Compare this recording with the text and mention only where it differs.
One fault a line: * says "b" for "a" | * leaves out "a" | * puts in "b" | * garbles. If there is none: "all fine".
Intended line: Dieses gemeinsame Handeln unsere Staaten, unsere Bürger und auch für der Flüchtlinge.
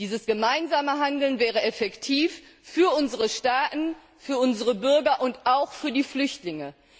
* puts in "wäre effektiv für"
* puts in "für"
* says "die" for "der"